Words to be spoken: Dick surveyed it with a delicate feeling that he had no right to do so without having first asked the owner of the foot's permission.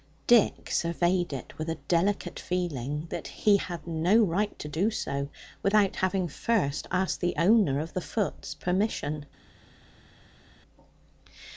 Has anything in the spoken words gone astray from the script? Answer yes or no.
no